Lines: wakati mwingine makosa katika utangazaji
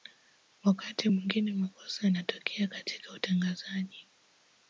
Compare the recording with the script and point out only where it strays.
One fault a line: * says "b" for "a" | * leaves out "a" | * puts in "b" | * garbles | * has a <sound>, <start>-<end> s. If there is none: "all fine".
* puts in "yanatokea"